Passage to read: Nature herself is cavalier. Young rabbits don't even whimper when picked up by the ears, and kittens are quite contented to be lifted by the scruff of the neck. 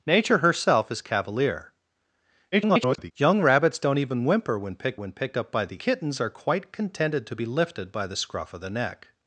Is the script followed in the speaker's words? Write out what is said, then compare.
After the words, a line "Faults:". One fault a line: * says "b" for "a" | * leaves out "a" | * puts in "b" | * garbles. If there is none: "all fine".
Nature herself is cavalier. [garbled] Young rabbits don't even whimper when picked when picked up by the kittens are quite contented to be lifted by the scruff of the neck.
Faults:
* garbles
* puts in "when picked"
* leaves out "ears and"